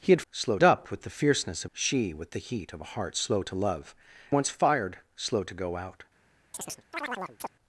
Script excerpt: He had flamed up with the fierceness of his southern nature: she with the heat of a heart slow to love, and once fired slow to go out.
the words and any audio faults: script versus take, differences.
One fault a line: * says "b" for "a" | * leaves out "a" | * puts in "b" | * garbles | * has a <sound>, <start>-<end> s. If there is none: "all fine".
* says "slow" for "flamed"
* leaves out "his southern nature"
* leaves out "and"
* has a chirp, 6.5-7.5 s